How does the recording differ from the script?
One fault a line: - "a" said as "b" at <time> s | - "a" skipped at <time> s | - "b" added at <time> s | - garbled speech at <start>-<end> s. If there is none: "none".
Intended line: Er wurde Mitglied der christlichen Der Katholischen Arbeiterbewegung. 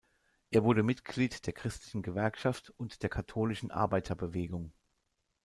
- "Gewerkschaft und" added at 2.0 s